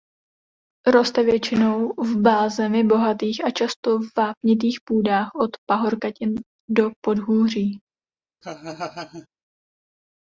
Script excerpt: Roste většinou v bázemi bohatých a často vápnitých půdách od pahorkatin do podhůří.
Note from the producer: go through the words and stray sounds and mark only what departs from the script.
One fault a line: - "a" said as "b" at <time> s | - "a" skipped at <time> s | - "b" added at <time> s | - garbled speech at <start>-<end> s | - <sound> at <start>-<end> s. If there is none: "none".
- laugh at 8.4-9.3 s